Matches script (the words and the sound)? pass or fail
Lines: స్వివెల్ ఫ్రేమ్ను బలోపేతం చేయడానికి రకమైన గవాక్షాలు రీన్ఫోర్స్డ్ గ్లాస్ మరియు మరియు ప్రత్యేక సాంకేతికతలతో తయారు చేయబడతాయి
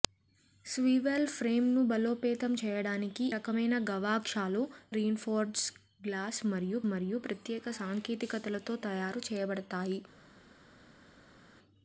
pass